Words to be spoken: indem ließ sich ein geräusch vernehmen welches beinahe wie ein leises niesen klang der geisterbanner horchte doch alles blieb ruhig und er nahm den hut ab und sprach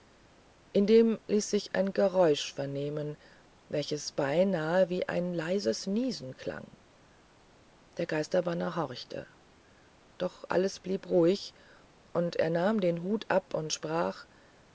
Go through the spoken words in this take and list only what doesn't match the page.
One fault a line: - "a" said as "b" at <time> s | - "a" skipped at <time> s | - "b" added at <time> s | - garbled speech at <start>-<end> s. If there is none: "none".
none